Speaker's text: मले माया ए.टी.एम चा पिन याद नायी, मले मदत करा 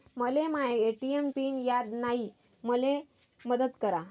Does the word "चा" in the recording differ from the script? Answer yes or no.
yes